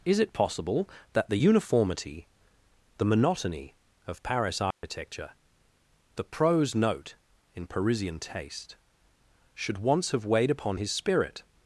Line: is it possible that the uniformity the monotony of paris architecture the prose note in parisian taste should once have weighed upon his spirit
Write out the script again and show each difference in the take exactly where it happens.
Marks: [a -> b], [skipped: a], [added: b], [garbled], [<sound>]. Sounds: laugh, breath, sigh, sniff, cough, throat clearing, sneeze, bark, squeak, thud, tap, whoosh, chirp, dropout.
is it possible that the uniformity the monotony of paris architecture [dropout] the prose note in parisian taste should once have weighed upon his spirit